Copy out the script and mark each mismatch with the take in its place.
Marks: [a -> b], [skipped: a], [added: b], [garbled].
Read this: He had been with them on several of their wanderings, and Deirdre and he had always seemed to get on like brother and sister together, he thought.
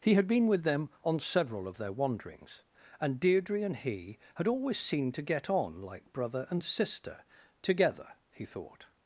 He had been with them on several of their wanderings, and Deirdre and he had always seemed to get on like brother and sister together, he thought.